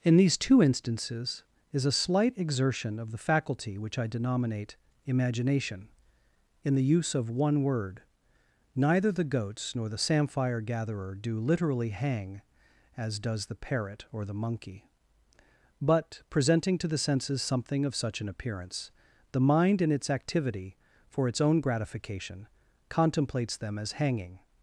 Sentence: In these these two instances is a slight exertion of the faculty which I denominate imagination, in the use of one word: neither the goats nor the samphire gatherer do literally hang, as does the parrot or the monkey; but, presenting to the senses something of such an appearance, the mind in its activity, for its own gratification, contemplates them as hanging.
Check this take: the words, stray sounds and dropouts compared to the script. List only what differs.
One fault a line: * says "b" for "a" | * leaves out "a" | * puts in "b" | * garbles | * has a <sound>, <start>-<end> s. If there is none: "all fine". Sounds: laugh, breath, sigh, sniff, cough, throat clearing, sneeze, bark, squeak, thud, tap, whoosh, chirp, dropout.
* leaves out "these"